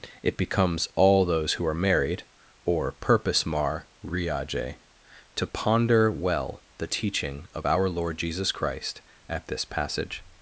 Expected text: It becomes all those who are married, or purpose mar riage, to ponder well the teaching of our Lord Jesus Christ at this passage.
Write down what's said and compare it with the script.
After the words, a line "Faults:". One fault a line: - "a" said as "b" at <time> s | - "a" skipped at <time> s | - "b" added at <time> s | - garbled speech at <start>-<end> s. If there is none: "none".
It becomes all those who are married, or purpose mar riage, to ponder well the teaching of our Lord Jesus Christ at this passage.
Faults:
none